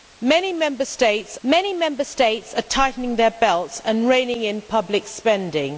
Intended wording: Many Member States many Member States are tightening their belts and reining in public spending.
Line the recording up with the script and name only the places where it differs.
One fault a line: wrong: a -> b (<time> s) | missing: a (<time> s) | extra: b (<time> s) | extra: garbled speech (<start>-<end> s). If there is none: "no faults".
no faults